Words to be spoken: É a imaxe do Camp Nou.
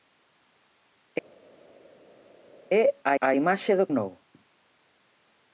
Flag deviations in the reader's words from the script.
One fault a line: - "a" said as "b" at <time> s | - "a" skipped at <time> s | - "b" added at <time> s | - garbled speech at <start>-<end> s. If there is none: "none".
- "a" added at 3.2 s
- "Camp" skipped at 3.9 s